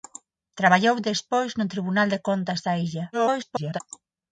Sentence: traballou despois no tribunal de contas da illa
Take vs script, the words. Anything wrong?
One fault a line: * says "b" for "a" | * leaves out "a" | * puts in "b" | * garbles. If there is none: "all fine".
* garbles